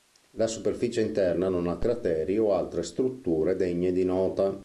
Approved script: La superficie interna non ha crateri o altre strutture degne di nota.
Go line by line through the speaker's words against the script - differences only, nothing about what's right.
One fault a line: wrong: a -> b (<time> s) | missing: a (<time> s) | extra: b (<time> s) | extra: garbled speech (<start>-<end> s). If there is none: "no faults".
no faults